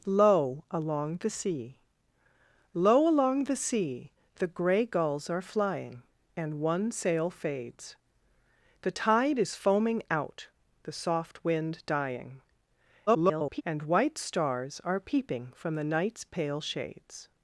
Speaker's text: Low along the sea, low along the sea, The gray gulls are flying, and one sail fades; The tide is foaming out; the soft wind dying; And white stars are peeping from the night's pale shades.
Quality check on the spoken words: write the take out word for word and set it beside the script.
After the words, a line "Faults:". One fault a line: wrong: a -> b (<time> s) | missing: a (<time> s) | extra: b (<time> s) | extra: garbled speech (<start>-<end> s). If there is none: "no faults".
Low along the sea, low along the sea, The gray gulls are flying, and one sail fades; The tide is foaming out; the soft wind dying; [garbled] And white stars are peeping from the night's pale shades.
Faults:
extra: garbled speech (13.1-13.6 s)